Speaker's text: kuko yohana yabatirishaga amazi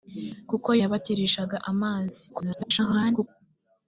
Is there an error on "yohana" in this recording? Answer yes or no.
yes